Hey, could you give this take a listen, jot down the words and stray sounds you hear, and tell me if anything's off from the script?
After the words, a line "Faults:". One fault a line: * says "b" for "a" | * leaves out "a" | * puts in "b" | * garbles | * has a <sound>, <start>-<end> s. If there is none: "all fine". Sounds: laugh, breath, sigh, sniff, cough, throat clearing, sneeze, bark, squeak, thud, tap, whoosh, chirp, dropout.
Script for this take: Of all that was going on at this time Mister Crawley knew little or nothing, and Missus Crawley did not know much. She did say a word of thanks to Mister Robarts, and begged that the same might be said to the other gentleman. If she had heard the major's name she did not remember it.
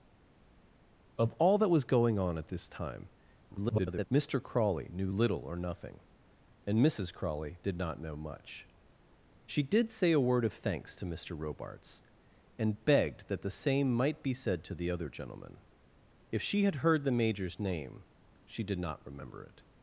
Of all that was going on at this time [garbled] Mister Crawley knew little or nothing, and Missus Crawley did not know much. She did say a word of thanks to Mister Robarts, and begged that the same might be said to the other gentleman. If she had heard the major's name she did not remember it.
Faults:
* garbles